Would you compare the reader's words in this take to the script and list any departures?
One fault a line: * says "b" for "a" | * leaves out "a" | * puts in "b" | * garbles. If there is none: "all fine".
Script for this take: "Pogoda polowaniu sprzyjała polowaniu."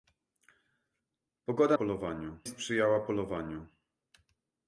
all fine